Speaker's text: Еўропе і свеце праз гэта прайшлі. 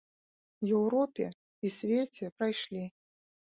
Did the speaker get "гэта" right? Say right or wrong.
wrong